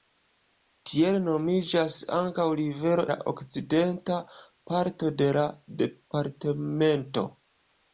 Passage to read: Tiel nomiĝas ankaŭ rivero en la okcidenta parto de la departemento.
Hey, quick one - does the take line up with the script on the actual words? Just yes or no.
no